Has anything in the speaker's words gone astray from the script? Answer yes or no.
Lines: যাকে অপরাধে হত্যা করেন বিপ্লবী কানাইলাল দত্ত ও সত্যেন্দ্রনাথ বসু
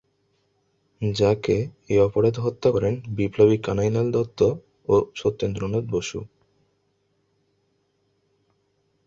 yes